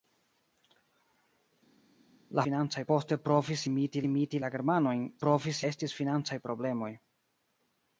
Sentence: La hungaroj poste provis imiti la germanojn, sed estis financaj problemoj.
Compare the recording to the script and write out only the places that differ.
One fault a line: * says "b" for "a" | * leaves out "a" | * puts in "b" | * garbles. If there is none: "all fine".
* says "financaj" for "hungaroj"
* puts in "imiti"
* says "provis" for "sed"